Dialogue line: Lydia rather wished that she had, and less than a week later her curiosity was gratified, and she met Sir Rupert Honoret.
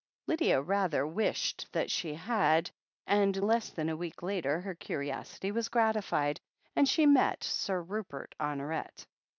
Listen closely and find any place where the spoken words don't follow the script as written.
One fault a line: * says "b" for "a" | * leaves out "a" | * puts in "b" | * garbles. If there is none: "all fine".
all fine